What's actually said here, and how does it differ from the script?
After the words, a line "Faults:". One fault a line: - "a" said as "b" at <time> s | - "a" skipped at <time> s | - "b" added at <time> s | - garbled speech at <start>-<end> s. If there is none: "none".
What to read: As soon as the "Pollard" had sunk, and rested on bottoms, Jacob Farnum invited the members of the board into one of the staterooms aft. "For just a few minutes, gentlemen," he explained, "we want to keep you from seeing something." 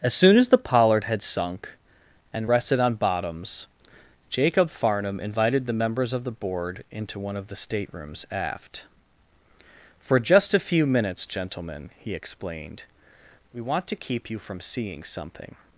As soon as the "Pollard" had sunk, and rested on bottoms, Jacob Farnum invited the members of the board into one of the staterooms aft. "For just a few minutes, gentlemen," he explained, "we want to keep you from seeing something."
Faults:
none